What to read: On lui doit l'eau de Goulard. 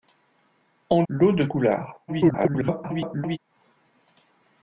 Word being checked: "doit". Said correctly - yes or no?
no